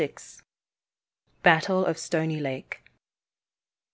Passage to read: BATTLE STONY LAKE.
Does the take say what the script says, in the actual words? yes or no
no